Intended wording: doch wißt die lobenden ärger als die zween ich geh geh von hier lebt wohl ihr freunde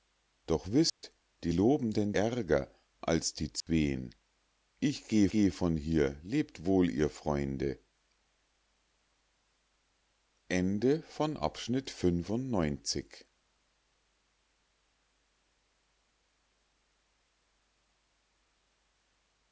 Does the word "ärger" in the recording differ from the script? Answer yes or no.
no